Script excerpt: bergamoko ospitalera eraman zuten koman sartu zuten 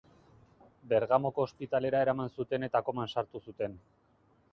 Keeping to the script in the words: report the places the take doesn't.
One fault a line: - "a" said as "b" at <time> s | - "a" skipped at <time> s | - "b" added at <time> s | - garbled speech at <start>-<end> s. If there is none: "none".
- "eta" added at 2.7 s